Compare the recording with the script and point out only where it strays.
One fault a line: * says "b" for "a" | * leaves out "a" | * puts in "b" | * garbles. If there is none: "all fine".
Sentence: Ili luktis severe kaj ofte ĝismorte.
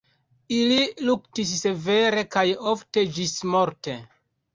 all fine